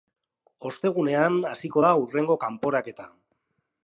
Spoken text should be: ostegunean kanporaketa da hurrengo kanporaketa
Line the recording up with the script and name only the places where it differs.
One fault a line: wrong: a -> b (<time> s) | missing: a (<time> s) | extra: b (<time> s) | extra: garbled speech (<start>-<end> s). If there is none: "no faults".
wrong: kanporaketa -> hasiko (1.5 s)